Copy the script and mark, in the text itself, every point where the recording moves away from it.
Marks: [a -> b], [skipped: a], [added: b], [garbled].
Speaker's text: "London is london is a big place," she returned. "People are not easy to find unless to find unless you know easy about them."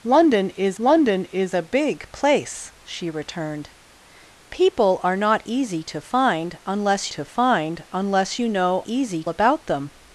"London is london is a big place," she returned. "People are not easy to find unless to find unless you know easy about them."